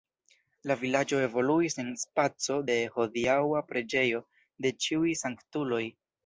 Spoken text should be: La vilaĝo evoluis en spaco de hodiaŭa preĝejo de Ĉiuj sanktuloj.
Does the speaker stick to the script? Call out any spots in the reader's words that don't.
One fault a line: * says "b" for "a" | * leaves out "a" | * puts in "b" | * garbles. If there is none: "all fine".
all fine